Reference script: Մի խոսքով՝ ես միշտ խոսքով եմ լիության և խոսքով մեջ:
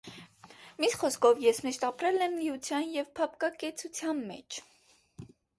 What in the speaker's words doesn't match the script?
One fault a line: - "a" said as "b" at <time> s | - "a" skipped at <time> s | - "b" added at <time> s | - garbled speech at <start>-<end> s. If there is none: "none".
- "խոսքով" said as "ապրել" at 1.9 s
- "խոսքով" said as "փափկակեցության" at 3.2 s